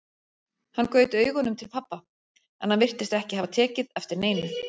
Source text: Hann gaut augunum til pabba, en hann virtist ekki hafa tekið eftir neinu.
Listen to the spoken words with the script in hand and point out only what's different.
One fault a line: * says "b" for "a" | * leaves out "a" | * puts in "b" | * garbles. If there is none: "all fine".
all fine